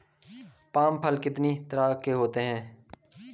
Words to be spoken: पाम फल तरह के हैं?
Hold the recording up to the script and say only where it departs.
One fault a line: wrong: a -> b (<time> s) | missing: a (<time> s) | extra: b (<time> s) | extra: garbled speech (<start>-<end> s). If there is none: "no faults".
extra: कितनी (1.2 s)
extra: होते (2.1 s)